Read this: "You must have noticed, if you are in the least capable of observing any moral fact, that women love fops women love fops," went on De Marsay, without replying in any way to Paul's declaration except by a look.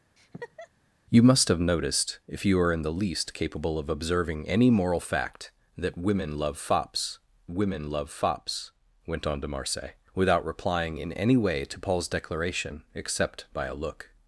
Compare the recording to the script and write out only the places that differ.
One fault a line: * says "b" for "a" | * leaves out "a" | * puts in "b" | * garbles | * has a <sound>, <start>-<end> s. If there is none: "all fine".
* has a laugh, 0.2-0.7 s